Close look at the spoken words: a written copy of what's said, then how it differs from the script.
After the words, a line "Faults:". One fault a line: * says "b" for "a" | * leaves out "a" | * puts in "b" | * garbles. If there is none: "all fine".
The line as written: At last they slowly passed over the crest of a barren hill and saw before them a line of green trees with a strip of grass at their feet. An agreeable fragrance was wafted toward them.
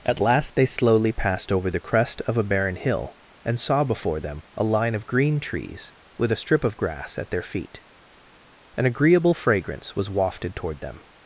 At last they slowly passed over the crest of a barren hill and saw before them a line of green trees with a strip of grass at their feet. An agreeable fragrance was wafted toward them.
Faults:
all fine